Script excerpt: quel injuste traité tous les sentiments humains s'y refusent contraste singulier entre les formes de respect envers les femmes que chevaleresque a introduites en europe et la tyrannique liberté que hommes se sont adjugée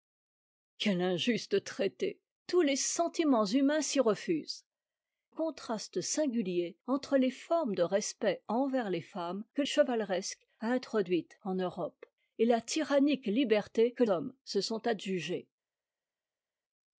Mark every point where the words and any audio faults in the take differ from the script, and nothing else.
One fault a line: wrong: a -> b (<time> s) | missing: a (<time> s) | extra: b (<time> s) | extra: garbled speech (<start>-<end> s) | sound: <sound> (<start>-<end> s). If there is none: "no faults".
no faults